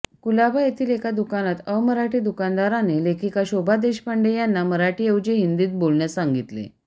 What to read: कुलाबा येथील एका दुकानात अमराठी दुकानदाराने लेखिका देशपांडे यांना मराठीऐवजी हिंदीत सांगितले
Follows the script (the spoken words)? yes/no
no